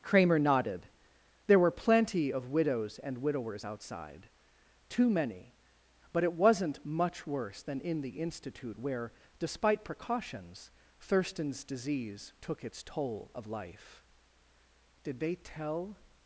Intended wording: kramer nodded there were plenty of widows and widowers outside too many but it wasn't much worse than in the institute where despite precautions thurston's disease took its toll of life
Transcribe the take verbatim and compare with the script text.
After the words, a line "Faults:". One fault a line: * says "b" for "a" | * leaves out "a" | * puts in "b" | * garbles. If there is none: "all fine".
kramer nodded there were plenty of widows and widowers outside too many but it wasn't much worse than in the institute where despite precautions thurston's disease took its toll of life did they tell
Faults:
* puts in "did they tell"